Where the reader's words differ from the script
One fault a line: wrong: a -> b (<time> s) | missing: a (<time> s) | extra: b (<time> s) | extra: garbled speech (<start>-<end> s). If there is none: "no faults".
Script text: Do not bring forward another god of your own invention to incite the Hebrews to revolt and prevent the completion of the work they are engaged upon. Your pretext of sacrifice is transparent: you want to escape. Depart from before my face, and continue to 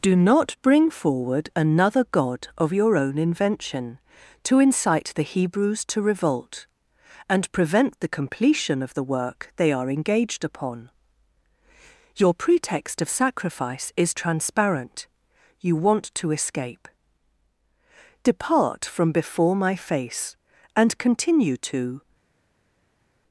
no faults